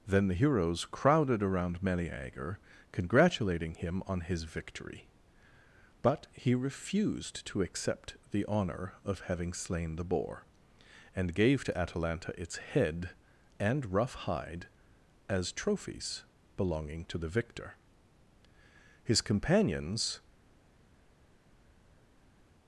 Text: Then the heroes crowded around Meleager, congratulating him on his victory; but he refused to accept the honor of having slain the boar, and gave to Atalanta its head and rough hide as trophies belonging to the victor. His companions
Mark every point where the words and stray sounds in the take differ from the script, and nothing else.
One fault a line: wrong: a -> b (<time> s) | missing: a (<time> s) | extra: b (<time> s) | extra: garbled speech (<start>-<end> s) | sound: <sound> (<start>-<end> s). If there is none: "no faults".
no faults